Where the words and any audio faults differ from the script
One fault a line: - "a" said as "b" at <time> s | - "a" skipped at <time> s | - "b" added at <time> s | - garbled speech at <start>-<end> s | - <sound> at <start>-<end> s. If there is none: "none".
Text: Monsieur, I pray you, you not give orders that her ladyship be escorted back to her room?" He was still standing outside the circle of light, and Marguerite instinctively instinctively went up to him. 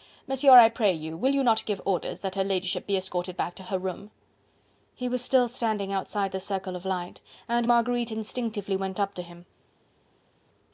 - "will" added at 1.1 s
- "instinctively" skipped at 8.8 s